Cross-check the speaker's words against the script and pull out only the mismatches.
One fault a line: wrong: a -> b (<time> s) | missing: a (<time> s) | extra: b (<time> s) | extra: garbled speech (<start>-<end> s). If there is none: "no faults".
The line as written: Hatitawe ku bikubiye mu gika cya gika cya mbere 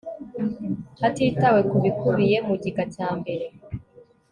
missing: gika cya (3.1 s)